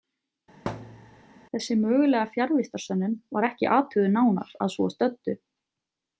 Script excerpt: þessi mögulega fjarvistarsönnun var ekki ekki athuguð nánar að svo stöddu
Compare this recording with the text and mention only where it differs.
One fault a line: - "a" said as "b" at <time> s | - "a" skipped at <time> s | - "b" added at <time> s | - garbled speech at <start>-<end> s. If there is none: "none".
- "ekki" skipped at 3.7 s